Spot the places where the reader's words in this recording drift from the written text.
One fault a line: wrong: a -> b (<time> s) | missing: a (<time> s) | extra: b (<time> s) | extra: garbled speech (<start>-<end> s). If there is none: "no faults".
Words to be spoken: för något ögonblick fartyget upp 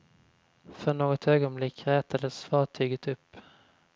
extra: rätades (1.9 s)